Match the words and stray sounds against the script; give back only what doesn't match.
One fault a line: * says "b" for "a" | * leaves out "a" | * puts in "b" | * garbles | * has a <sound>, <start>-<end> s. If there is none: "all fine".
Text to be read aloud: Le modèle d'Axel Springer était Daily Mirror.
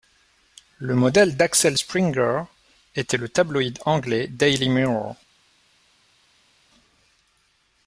* puts in "le tabloïd anglais"